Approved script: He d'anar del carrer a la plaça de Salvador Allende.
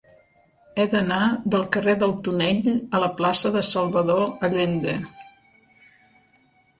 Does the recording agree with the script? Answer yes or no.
no